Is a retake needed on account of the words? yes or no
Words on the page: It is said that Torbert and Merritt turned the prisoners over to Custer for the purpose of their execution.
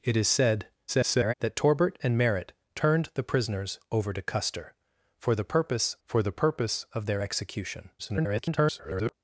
yes